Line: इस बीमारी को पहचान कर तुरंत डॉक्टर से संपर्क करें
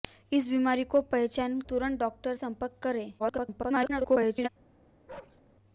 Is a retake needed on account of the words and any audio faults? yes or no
yes